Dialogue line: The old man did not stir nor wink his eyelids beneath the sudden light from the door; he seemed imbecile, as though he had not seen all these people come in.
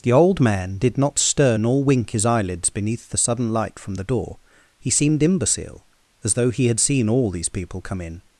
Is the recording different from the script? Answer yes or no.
yes